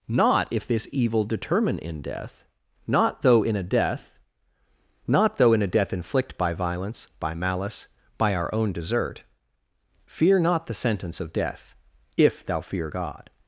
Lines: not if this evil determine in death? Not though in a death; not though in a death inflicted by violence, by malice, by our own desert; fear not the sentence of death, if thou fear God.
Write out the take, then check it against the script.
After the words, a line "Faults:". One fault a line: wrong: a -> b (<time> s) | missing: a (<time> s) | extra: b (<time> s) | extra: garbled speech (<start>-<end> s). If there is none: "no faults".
not if this evil determine in death? Not though in a death; not though in a death inflict by violence, by malice, by our own desert; fear not the sentence of death, if thou fear God.
Faults:
wrong: inflicted -> inflict (5.9 s)